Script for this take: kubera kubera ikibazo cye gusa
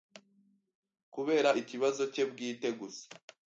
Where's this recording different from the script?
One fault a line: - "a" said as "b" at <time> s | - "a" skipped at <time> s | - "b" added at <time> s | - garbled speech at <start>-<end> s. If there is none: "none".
- "kubera" skipped at 1.5 s
- "bwite" added at 2.3 s